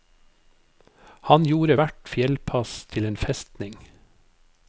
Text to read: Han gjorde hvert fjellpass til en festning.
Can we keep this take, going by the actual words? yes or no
yes